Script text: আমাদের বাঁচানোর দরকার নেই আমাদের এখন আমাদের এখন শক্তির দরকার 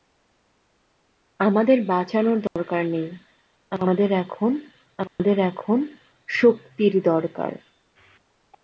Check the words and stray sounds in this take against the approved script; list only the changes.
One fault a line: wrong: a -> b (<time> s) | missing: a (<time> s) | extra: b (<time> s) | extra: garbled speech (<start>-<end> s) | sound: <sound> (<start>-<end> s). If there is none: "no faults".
sound: dropout (2.5-2.6 s)
sound: dropout (5.1-5.2 s)